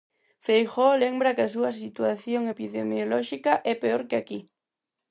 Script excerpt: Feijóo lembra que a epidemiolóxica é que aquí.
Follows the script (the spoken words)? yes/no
no